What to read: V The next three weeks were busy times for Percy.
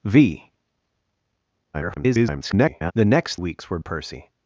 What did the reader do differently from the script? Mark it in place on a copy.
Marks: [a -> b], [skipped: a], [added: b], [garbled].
V [garbled] The next [skipped: three] weeks were [skipped: busy times for] Percy.